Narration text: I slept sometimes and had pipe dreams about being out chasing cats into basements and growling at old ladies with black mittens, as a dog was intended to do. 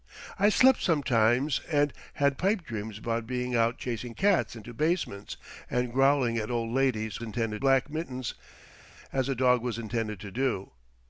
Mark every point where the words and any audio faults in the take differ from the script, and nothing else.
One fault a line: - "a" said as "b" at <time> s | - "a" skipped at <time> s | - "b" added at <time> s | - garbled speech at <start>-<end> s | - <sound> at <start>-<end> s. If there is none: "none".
- "with" said as "intended" at 7.2 s